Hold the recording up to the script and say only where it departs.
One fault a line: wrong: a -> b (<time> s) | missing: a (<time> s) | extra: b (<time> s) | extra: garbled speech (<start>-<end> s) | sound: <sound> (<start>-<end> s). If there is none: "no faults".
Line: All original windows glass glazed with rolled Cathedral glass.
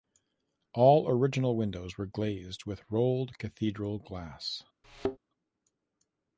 wrong: glass -> were (1.9 s)
sound: thud (4.8-5.2 s)